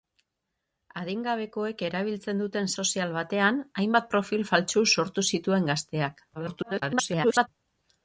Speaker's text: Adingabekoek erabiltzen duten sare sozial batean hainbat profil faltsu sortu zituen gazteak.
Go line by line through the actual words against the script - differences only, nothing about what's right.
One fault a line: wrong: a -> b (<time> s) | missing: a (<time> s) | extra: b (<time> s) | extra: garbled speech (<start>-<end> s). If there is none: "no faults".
missing: sare (2.7 s)
extra: garbled speech (6.3-7.5 s)